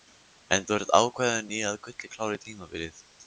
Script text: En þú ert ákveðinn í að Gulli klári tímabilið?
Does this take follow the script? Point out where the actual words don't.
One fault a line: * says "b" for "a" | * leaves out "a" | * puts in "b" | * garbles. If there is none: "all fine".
all fine